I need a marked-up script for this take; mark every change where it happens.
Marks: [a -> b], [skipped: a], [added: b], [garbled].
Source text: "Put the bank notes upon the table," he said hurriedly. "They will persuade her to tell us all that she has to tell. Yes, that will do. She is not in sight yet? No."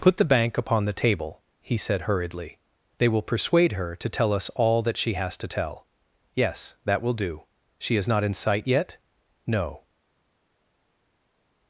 "Put the bank [skipped: notes] upon the table," he said hurriedly. "They will persuade her to tell us all that she has to tell. Yes, that will do. She is not in sight yet? No."